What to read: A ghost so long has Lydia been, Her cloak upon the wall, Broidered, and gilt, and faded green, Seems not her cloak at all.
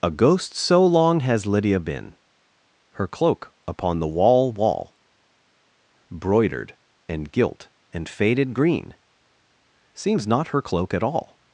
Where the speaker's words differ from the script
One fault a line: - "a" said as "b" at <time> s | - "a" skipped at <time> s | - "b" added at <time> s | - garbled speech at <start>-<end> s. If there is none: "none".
- "wall" added at 4.5 s